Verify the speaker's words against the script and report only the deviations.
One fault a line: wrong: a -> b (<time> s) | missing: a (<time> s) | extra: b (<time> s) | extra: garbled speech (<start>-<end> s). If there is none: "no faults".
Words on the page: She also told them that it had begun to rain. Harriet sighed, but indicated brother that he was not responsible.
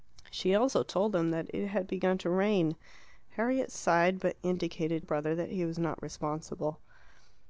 no faults